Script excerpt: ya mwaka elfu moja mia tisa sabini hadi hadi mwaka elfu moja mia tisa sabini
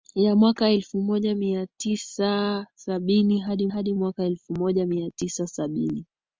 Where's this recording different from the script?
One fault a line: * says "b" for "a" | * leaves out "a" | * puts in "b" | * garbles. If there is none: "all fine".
all fine